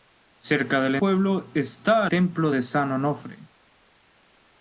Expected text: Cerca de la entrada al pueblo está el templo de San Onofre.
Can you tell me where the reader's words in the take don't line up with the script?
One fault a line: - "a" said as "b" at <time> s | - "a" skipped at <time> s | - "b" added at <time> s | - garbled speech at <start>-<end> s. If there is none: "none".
- "entrada al" skipped at 1.0 s
- "el" skipped at 2.0 s